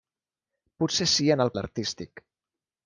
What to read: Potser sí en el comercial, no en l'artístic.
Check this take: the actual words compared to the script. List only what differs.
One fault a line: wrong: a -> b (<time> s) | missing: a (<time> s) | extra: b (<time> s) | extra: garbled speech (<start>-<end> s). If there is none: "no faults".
missing: comercial no en (1.5 s)